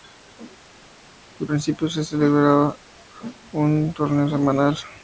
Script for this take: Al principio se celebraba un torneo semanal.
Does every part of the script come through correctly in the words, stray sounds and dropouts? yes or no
yes